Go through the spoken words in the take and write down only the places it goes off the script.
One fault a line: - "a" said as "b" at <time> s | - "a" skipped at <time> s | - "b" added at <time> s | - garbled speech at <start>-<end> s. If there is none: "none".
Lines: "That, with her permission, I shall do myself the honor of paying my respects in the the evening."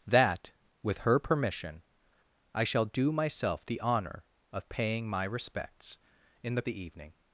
none